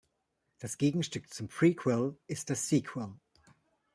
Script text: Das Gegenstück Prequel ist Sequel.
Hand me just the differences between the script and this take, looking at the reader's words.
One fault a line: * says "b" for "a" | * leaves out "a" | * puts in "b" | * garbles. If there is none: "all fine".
* puts in "zum"
* puts in "das"